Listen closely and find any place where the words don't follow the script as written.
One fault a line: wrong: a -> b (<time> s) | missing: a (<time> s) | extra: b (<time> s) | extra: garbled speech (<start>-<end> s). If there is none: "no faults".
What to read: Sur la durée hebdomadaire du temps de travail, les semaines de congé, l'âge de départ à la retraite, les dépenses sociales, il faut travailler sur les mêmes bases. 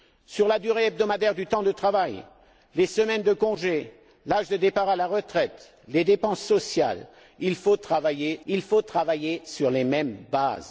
extra: il faut travailler (8.5 s)